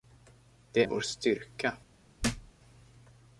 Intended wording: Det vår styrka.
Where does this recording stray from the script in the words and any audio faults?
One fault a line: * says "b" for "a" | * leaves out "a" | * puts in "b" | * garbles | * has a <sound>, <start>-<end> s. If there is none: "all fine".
* has a thud, 2.2-2.5 s